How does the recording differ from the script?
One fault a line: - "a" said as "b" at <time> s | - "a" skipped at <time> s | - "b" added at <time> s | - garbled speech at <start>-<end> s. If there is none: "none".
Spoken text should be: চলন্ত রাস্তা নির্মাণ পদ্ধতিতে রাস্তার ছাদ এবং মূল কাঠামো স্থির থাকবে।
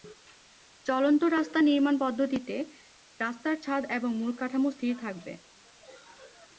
none